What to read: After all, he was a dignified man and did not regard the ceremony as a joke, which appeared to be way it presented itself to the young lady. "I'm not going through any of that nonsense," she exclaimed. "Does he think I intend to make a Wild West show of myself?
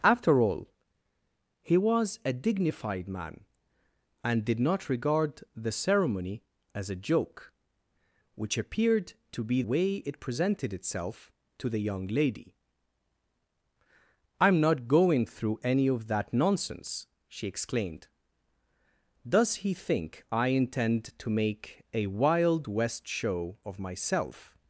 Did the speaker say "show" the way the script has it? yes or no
yes